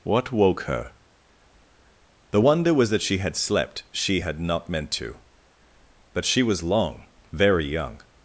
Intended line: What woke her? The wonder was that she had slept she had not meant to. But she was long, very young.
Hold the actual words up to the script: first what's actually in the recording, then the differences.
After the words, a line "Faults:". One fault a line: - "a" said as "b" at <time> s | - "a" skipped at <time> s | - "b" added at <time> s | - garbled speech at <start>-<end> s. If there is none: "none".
What woke her? The wonder was that she had slept she had not meant to. But she was long, very young.
Faults:
none